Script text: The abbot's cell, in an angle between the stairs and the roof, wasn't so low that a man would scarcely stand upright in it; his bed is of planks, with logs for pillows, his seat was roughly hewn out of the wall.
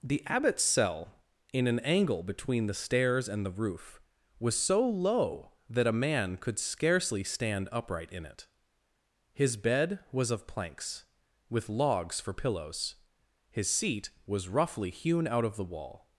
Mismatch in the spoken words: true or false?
true